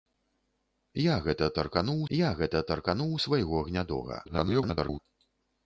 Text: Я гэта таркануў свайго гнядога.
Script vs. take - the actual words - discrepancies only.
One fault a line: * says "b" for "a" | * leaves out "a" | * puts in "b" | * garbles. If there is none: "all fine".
* puts in "я гэта таркануў"
* garbles